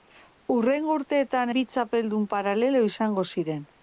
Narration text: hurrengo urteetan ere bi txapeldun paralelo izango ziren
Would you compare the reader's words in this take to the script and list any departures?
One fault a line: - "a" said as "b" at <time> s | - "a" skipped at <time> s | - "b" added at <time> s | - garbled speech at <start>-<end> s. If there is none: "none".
- "ere" skipped at 1.5 s